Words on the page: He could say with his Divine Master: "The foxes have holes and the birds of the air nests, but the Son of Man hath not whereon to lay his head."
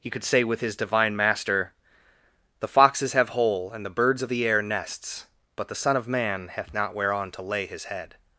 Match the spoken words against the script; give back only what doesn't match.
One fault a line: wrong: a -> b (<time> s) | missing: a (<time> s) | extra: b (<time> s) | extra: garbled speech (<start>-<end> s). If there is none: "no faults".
wrong: holes -> hole (3.3 s)